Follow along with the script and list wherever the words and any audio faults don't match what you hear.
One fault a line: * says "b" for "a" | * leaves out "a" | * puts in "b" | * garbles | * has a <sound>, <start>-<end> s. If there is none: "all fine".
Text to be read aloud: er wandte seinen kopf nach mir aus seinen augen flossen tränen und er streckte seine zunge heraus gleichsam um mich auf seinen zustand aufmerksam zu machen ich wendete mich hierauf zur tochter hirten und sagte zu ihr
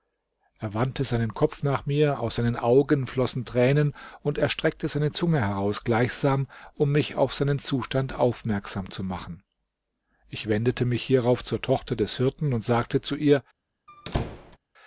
* puts in "des"
* has a squeak, 13.9-14.6 s